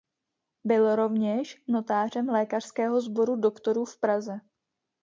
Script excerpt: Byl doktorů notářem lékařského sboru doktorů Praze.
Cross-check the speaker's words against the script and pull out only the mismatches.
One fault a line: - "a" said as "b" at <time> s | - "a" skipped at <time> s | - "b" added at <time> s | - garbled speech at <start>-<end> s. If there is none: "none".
- "doktorů" said as "rovněž" at 0.9 s
- "v" added at 3.9 s